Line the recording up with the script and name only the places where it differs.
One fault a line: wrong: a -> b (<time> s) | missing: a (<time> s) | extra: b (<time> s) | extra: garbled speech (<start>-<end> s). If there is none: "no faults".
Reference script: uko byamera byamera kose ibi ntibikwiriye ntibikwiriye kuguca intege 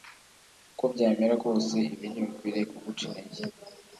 missing: byamera (1.4 s)
missing: ntibikwiriye (2.6 s)